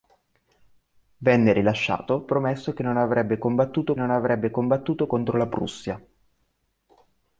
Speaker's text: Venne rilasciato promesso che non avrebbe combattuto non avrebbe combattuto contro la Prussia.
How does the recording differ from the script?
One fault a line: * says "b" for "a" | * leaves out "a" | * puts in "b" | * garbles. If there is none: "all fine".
all fine